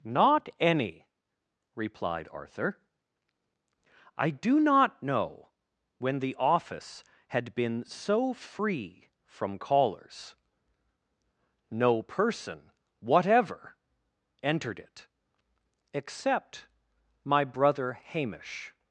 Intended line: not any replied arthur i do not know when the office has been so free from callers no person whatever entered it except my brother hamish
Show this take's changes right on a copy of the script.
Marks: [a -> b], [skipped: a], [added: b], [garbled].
not any replied arthur i do not know when the office [has -> had] been so free from callers no person whatever entered it except my brother hamish